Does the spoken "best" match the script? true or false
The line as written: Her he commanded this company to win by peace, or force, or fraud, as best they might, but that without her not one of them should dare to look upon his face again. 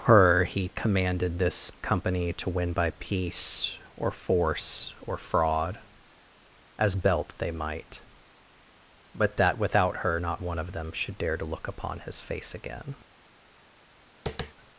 false